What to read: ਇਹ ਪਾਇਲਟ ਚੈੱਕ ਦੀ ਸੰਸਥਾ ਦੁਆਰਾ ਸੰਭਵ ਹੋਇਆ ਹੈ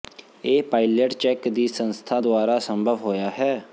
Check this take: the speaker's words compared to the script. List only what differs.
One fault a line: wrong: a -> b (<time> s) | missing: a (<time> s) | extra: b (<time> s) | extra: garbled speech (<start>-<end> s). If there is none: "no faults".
no faults